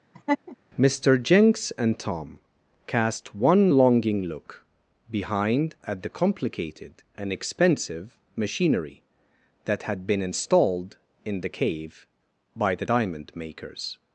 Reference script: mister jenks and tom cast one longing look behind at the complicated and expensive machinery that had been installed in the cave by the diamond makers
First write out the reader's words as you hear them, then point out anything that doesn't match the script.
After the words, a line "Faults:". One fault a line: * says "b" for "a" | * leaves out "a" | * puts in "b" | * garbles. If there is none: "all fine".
mister jenks and tom cast one longing look behind at the complicated and expensive machinery that had been installed in the cave by the diamond makers
Faults:
all fine